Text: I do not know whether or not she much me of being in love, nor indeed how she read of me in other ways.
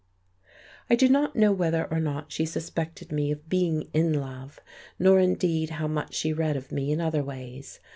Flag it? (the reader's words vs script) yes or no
yes